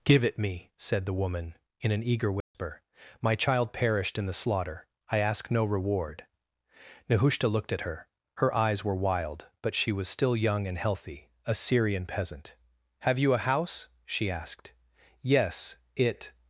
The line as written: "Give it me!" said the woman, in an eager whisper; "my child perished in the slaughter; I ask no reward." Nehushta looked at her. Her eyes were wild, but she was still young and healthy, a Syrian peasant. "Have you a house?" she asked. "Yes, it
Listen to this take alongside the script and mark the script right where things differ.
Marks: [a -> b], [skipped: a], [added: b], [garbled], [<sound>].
"Give it me!" said the woman, in an eager whisper; [dropout] "my child perished in the slaughter; I ask no reward." Nehushta looked at her. Her eyes were wild, but she was still young and healthy, a Syrian peasant. "Have you a house?" she asked. "Yes, it